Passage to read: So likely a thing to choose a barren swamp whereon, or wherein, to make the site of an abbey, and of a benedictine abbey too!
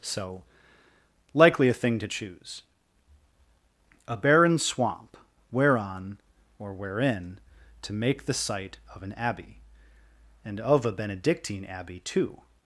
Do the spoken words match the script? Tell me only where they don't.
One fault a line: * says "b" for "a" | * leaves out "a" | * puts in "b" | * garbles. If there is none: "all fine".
all fine